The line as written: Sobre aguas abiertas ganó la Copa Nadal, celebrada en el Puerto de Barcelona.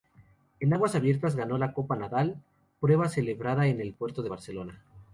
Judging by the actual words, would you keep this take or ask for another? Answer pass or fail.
fail